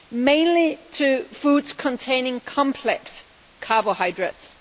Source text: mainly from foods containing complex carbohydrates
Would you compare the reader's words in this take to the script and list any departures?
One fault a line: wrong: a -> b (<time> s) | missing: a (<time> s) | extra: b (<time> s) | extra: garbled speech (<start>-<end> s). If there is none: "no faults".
wrong: from -> to (0.9 s)